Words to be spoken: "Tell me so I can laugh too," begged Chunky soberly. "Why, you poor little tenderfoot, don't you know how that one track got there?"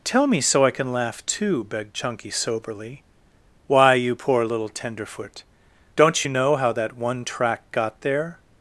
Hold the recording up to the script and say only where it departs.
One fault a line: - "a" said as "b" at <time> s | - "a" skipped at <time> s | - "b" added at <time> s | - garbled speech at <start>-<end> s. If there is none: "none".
none